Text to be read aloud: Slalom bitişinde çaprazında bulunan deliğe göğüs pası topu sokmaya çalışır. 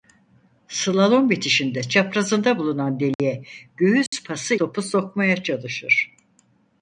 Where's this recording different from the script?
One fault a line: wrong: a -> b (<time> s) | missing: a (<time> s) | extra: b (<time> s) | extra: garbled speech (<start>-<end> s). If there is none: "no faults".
no faults